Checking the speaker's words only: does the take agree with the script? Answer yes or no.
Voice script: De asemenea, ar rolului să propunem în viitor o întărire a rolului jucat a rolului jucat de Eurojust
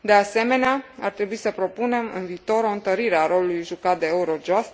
no